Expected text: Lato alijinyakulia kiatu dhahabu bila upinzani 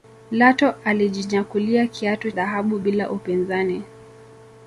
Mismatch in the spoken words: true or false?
false